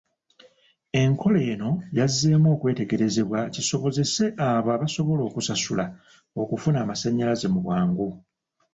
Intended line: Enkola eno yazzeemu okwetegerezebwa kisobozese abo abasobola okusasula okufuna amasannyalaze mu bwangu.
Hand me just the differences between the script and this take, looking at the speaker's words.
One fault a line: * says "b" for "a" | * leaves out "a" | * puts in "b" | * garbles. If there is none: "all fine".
all fine